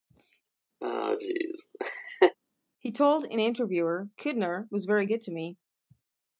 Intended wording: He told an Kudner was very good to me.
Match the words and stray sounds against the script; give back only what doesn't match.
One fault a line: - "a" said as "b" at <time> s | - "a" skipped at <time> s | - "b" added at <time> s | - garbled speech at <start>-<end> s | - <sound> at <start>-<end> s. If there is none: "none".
- laugh at 0.8-2.4 s
- "interviewer" added at 3.4 s